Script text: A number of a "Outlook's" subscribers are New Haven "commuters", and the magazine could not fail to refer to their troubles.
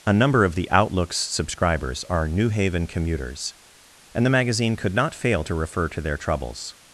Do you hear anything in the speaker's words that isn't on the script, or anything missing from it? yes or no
yes